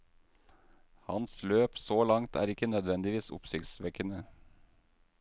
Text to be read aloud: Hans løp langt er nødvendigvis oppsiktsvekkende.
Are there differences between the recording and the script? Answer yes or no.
yes